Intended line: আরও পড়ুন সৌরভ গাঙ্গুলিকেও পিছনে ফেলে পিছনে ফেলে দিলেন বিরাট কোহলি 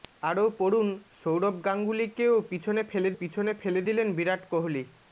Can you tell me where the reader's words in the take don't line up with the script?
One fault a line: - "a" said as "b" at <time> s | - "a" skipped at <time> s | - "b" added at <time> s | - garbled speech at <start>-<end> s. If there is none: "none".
none